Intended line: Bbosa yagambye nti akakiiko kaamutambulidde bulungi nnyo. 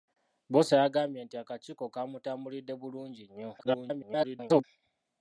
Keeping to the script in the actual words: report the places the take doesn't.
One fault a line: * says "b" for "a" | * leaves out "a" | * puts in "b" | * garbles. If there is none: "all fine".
* garbles